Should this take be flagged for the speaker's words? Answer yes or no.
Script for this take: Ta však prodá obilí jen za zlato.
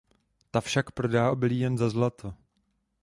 no